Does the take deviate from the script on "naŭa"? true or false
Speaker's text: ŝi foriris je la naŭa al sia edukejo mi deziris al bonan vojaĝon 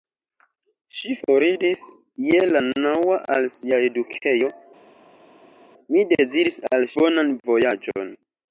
false